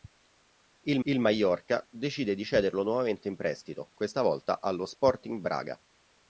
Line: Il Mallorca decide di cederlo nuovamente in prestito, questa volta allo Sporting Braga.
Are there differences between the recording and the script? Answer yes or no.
yes